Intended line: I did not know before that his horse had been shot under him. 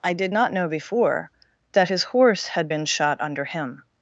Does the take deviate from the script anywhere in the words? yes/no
no